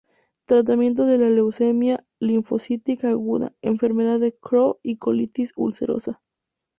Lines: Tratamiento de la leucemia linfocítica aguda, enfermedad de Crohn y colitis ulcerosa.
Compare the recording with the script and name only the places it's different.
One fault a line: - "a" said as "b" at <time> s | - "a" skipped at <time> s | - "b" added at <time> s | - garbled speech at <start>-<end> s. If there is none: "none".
none